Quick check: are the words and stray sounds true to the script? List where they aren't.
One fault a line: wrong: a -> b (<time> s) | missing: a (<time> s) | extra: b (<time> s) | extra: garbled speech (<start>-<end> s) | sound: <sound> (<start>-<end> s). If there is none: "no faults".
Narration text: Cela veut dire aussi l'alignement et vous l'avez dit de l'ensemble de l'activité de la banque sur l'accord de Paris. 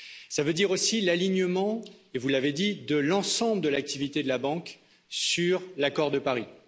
no faults